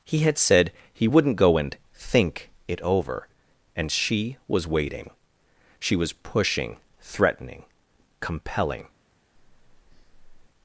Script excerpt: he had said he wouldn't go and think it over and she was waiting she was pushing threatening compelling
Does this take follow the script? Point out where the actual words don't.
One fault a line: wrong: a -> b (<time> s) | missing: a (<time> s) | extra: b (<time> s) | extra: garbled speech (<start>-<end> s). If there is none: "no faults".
no faults